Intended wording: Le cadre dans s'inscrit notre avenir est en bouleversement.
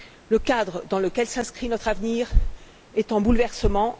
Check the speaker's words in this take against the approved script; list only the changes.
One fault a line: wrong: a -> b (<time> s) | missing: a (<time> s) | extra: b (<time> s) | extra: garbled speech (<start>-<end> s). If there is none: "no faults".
extra: lequel (1.0 s)